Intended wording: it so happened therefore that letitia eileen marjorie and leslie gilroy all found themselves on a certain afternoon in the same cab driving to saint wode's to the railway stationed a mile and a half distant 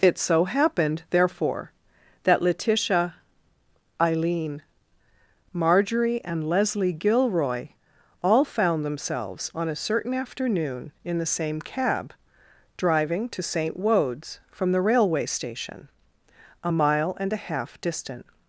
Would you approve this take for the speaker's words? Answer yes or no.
no